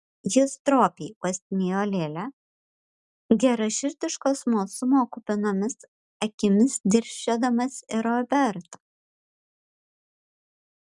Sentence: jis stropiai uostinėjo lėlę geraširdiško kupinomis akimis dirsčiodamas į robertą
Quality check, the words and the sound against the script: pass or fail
fail